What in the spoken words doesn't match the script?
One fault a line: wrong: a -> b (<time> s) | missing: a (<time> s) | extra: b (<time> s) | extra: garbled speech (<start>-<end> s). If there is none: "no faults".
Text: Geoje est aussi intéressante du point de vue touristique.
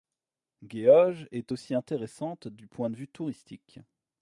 no faults